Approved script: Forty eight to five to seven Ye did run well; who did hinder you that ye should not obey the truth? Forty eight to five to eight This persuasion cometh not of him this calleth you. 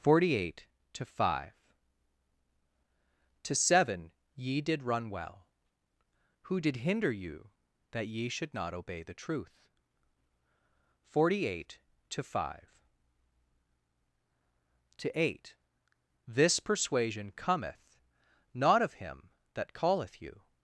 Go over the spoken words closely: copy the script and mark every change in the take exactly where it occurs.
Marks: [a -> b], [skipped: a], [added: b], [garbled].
Forty eight to five to seven Ye did run well; who did hinder you that ye should not obey the truth? Forty eight to five to eight This persuasion cometh not of him [this -> that] calleth you.